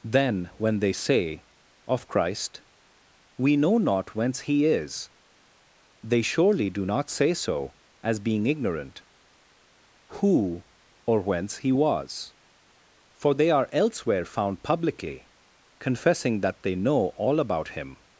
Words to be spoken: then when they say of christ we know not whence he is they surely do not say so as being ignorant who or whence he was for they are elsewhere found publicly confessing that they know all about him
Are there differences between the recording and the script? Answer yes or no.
no